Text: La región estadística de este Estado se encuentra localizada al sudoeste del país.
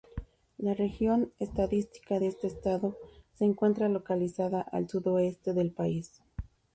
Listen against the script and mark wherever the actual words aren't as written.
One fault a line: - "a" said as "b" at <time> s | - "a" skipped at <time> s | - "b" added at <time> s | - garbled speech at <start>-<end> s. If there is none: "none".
none